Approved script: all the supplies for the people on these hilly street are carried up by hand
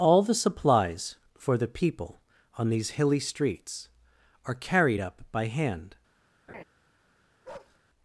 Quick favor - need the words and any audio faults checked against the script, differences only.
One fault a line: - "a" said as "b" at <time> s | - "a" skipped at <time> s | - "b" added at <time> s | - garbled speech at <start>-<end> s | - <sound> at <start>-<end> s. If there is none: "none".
- "street" said as "streets" at 3.2 s
- laugh at 6.5-6.6 s
- bark at 7.4-7.8 s